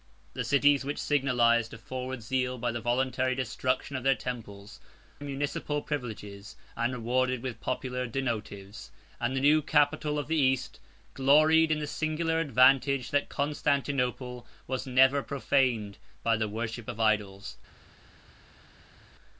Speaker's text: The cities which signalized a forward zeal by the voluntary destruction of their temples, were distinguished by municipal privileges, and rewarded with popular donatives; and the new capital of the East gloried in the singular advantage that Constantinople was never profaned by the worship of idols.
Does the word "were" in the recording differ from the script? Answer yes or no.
yes